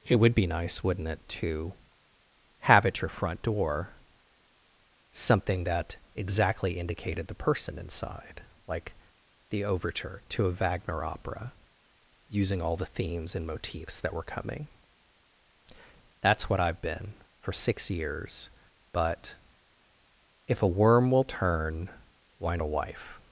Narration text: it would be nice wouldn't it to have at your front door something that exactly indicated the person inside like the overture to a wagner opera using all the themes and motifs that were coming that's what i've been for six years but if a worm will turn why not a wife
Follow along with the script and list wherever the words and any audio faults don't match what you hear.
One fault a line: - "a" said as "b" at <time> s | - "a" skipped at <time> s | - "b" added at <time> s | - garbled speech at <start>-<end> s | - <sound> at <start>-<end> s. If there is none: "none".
- "not" skipped at 22.6 s